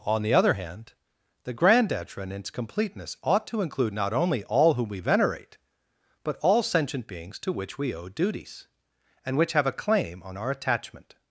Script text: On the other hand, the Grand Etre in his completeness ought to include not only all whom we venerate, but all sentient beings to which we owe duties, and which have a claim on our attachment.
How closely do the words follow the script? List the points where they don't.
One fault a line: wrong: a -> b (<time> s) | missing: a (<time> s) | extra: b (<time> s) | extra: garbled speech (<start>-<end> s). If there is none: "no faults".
wrong: his -> its (2.3 s)